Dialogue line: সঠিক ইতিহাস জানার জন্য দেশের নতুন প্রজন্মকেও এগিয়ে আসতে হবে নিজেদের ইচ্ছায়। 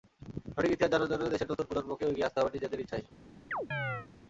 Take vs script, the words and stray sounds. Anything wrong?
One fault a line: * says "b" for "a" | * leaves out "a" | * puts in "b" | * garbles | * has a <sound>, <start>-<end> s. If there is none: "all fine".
* has a chirp, 3.5-4.1 s